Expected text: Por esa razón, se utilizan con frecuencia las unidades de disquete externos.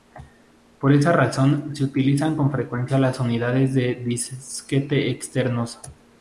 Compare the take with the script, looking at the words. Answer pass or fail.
pass